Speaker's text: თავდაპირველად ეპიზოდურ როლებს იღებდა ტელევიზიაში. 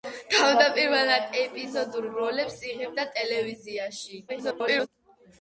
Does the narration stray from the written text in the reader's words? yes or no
yes